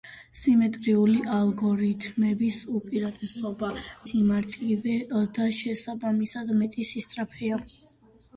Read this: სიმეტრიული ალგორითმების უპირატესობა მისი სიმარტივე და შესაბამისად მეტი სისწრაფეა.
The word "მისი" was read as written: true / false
false